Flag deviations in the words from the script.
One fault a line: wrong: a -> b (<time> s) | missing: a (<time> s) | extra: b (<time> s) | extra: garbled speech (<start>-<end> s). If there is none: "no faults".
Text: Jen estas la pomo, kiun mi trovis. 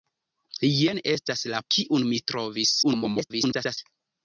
missing: pomo (1.6 s)
extra: garbled speech (2.8-3.8 s)